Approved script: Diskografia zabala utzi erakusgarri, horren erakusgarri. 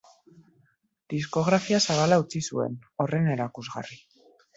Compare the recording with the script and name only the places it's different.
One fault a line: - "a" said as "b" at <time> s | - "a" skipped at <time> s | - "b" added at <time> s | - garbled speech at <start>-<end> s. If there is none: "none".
- "erakusgarri" said as "zuen" at 2.5 s